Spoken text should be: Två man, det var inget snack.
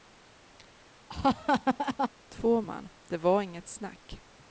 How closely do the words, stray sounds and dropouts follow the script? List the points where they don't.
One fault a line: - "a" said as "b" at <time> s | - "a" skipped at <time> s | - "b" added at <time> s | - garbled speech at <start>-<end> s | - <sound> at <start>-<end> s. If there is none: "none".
- laugh at 1.1-2.1 s